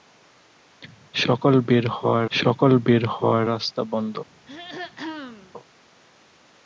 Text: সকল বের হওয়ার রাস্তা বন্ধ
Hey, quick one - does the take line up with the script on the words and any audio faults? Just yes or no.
no